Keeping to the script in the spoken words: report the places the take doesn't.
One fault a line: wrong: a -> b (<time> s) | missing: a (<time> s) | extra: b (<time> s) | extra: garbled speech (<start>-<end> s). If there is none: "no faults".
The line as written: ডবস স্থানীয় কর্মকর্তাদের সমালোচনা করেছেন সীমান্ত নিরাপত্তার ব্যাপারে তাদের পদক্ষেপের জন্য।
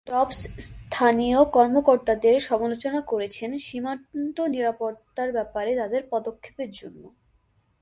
no faults